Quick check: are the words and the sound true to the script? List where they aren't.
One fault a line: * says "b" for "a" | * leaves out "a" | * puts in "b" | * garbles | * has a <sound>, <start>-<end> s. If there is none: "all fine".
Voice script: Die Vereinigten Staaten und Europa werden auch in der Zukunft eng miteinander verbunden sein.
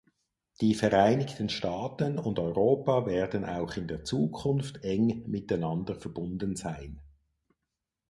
all fine